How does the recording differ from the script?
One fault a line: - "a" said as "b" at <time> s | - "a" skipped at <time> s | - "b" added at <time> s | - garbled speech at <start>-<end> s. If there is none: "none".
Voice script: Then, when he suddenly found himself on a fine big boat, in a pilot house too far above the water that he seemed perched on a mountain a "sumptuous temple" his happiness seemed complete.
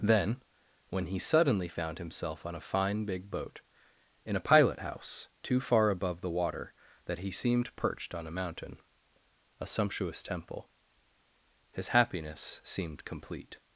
none